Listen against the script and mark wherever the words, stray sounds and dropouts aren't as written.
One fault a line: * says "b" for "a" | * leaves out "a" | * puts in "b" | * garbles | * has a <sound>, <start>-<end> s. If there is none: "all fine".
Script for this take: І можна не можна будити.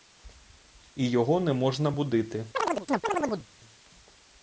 * says "його" for "можна"
* has a chirp, 2.5-3.5 s